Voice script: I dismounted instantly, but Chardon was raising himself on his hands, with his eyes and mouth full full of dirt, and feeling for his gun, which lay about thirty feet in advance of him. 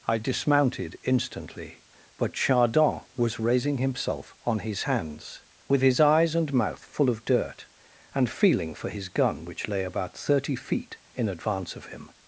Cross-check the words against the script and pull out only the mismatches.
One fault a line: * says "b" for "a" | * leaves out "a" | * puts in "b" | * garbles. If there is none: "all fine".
* leaves out "full"